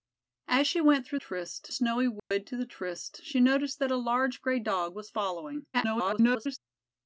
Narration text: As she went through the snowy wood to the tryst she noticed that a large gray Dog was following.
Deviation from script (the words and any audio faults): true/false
true